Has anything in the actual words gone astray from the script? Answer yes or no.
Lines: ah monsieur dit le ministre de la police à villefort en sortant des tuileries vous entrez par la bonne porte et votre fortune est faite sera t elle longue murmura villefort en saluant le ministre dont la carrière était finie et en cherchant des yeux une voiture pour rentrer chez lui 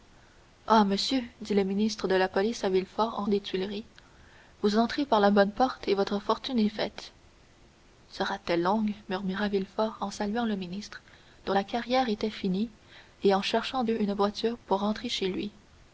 yes